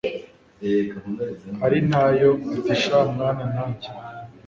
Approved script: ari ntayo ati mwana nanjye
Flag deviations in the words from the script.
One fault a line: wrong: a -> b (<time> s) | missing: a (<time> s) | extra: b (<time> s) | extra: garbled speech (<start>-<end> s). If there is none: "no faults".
extra: sha (2.8 s)